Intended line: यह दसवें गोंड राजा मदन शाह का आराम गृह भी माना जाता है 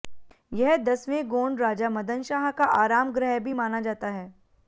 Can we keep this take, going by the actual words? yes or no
yes